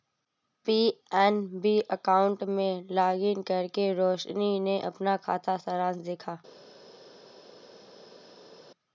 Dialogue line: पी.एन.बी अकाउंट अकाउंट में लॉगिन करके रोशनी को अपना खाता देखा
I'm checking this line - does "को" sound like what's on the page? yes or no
no